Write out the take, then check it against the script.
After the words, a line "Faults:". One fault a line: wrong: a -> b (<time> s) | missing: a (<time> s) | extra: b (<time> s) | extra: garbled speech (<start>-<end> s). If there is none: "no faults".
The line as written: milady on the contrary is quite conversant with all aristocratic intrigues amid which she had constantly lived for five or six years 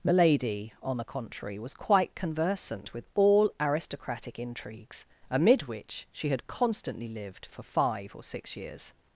milady on the contrary was quite conversant with all aristocratic intrigues amid which she had constantly lived for five or six years
Faults:
wrong: is -> was (1.6 s)